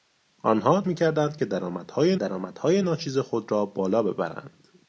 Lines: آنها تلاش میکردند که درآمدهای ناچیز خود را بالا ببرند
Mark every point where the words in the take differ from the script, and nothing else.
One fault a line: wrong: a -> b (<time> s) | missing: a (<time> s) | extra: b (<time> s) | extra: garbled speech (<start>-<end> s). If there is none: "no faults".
missing: تلاش (0.8 s)
extra: درآمدهای (2.1 s)